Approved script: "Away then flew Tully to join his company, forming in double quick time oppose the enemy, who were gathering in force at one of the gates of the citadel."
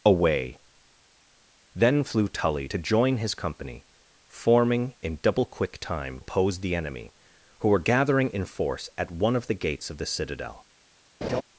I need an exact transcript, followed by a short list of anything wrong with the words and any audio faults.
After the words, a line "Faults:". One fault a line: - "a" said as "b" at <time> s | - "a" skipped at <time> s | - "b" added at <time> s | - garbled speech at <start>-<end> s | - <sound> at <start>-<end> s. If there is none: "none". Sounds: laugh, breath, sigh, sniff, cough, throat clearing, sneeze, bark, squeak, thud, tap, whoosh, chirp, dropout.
"Away then flew Tully to join his company, forming in double quick time oppose the enemy, who were gathering in force at one of the gates of the citadel."
Faults:
- laugh at 11.2-11.4 s